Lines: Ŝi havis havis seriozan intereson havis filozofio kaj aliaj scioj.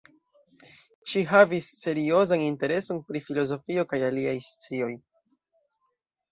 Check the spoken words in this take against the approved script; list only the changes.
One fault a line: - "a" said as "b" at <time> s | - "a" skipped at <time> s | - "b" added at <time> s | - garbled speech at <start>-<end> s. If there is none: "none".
- "havis" skipped at 1.7 s
- "havis" said as "pri" at 3.1 s